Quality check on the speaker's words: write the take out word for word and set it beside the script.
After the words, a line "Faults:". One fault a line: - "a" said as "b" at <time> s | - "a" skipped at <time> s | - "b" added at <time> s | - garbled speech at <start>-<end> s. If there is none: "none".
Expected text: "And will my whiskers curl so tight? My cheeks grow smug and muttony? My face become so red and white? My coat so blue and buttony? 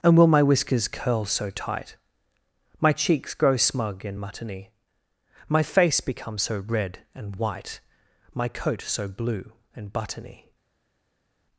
"And will my whiskers curl so tight? My cheeks grow smug and muttony? My face become so red and white? My coat so blue and buttony?
Faults:
none